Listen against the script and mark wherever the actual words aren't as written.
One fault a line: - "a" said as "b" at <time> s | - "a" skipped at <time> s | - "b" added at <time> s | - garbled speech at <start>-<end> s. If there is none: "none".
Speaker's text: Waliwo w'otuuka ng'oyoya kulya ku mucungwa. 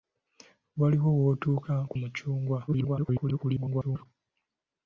- "ng'oyoya kulya" skipped at 1.7 s
- garbled speech at 2.7-4.1 s